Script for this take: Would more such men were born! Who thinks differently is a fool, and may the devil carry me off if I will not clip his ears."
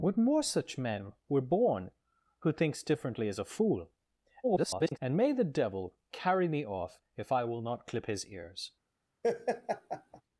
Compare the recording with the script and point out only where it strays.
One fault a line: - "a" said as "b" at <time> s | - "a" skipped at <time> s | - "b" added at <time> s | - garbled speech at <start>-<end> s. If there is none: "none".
- garbled speech at 4.4-5.0 s